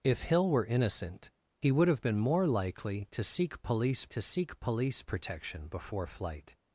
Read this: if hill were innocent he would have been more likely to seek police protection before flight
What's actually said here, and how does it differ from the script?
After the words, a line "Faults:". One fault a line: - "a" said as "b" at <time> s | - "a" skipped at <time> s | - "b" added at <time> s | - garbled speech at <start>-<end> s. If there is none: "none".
if hill were innocent he would have been more likely to seek police to seek police protection before flight
Faults:
- "to seek police" added at 4.1 s